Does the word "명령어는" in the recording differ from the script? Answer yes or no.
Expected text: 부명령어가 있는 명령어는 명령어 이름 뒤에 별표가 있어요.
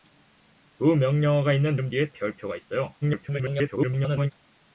yes